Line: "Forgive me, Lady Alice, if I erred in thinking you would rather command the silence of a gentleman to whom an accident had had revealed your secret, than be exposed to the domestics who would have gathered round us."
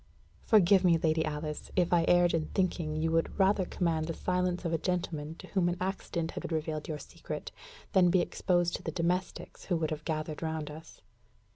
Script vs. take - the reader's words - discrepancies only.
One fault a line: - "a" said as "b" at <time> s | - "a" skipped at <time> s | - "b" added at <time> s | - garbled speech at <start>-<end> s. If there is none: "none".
none